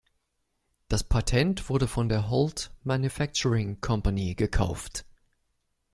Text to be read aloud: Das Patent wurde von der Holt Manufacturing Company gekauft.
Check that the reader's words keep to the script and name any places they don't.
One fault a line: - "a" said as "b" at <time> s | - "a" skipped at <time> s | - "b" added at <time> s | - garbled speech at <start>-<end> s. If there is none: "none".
none